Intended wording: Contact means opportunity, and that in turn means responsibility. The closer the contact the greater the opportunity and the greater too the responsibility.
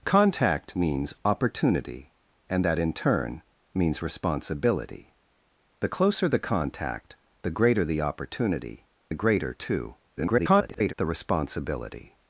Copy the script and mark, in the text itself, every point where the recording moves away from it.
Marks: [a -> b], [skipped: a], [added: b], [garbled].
Contact means opportunity, and that in turn means responsibility. The closer the contact the greater the opportunity [skipped: and] the greater too [garbled] the responsibility.